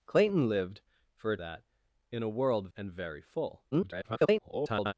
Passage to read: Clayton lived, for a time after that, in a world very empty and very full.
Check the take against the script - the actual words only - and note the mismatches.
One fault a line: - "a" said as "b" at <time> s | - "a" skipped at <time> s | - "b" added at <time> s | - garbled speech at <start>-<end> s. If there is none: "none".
- "time after" skipped at 1.4 s
- "very empty" skipped at 2.7 s
- garbled speech at 3.7-4.9 s